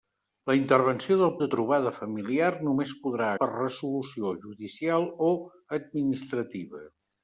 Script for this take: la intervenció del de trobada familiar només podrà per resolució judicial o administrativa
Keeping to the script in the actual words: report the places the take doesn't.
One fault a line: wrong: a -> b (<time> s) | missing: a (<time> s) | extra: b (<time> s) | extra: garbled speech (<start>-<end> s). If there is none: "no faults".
no faults